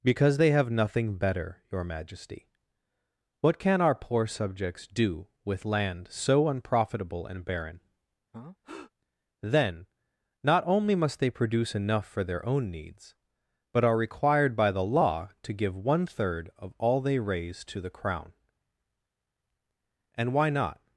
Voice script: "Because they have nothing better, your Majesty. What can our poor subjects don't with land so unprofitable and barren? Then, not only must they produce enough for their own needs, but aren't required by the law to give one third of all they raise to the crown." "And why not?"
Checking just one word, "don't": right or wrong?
wrong